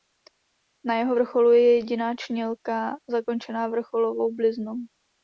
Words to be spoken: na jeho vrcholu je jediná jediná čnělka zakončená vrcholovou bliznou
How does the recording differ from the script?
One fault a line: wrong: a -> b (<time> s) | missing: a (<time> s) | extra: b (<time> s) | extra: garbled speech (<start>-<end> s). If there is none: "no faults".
missing: jediná (2.1 s)